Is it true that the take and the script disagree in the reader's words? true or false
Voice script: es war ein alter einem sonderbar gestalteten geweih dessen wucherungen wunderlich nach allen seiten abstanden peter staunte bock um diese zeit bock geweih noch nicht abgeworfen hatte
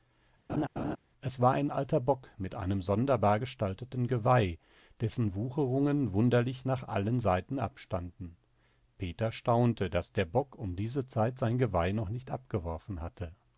true